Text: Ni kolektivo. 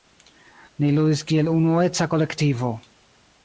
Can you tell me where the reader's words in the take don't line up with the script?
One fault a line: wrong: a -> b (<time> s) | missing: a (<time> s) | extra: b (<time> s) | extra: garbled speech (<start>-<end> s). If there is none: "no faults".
extra: ludis kiel unueca (0.9 s)